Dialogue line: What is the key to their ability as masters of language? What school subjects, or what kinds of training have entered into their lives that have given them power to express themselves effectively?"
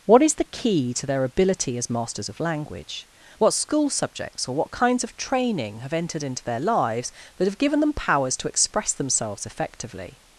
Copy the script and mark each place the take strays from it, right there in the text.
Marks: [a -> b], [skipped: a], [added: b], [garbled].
What is the key to their ability as masters of language? What school subjects, or what kinds of training have entered into their lives that have given them [power -> powers] to express themselves effectively?"